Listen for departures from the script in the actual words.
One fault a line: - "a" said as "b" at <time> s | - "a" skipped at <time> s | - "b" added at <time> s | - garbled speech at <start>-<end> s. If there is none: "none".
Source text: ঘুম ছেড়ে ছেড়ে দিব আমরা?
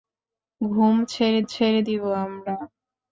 none